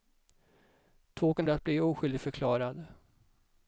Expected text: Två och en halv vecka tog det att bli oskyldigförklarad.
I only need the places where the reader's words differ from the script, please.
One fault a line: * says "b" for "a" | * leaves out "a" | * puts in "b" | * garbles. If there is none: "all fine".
* leaves out "halv vecka tog"